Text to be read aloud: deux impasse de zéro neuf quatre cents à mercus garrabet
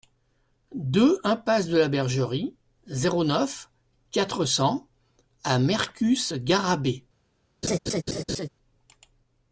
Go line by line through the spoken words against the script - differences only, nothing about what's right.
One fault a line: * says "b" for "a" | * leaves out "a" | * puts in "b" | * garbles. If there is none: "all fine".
* puts in "la bergerie"